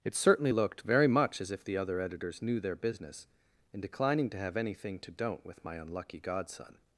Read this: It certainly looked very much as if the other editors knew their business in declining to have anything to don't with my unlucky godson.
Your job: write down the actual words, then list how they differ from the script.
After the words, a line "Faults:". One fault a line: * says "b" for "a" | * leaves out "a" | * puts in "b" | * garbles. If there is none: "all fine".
It certainly looked very much as if the other editors knew their business in declining to have anything to don't with my unlucky godson.
Faults:
all fine